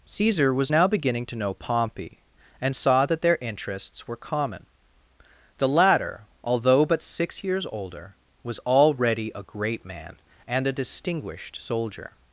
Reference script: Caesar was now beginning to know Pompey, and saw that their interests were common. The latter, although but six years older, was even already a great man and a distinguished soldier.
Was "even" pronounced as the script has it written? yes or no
no